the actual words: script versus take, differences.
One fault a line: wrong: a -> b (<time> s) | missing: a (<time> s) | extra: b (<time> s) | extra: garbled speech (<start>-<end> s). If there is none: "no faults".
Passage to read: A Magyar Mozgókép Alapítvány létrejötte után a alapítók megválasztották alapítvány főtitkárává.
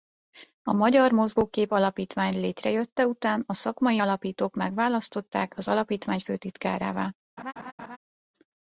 extra: szakmai (3.5 s)
extra: az (5.6 s)